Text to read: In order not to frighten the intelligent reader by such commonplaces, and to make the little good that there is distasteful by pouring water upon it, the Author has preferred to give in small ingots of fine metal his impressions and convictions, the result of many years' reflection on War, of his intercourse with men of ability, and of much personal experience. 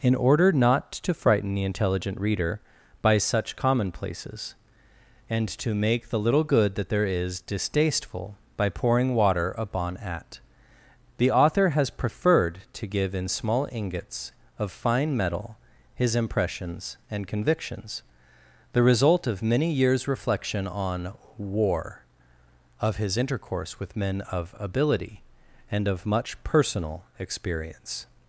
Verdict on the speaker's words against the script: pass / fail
fail